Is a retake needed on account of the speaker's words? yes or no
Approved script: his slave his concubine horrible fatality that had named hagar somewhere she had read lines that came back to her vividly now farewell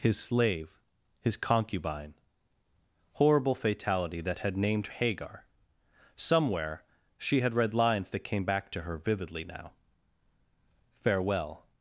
no